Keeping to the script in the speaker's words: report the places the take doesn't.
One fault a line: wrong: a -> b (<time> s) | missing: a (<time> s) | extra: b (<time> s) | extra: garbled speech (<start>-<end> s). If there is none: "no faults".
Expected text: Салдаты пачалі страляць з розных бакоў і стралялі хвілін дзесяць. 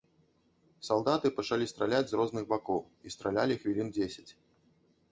no faults